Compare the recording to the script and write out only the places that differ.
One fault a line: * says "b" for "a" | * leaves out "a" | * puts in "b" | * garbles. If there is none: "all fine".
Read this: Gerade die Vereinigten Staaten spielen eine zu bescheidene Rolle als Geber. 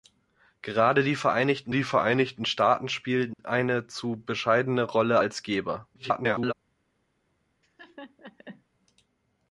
* puts in "die Vereinigten"
* garbles